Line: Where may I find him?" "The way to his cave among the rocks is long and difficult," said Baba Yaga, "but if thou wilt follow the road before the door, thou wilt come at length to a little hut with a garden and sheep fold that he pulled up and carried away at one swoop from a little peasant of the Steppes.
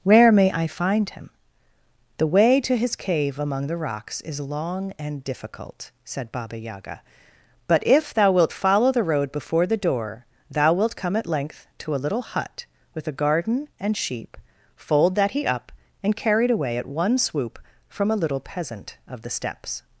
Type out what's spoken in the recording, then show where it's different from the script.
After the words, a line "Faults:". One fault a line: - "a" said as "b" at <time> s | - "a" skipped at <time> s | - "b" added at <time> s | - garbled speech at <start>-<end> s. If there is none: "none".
Where may I find him?" "The way to his cave among the rocks is long and difficult," said Baba Yaga, "but if thou wilt follow the road before the door, thou wilt come at length to a little hut with a garden and sheep fold that he up and carried away at one swoop from a little peasant of the Steppes.
Faults:
- "pulled" skipped at 15.4 s